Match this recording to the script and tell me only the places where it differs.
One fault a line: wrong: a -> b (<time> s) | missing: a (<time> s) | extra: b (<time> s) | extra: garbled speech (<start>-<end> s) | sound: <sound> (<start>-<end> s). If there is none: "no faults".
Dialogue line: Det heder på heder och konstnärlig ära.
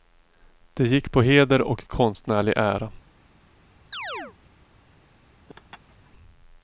wrong: heder -> gick (0.9 s)
sound: chirp (3.9-4.4 s)
sound: laugh (5.5-6.1 s)